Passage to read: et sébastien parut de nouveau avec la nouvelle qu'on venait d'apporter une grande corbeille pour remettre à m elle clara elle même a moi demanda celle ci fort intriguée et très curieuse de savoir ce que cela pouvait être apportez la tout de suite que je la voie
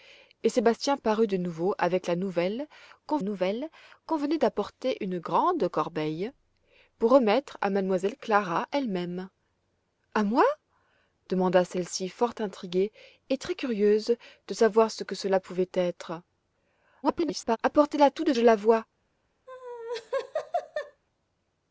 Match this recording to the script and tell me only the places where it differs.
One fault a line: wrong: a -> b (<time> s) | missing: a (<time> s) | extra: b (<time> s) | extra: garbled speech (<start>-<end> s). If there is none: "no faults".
extra: nouvelle qu'on (3.2 s)
extra: garbled speech (17.0-17.6 s)
missing: suite que (18.3 s)